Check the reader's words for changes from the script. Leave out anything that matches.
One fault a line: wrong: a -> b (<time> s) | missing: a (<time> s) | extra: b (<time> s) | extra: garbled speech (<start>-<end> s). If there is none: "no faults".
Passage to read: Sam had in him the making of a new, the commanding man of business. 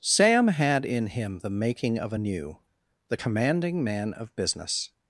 no faults